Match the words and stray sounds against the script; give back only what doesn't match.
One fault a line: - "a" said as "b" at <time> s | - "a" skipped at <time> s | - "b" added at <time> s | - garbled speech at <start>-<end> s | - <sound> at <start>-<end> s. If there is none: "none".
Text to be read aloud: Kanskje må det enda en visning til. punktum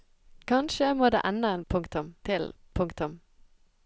- "visning" said as "punktum" at 1.7 s